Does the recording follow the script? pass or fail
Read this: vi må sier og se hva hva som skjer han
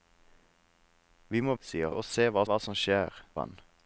pass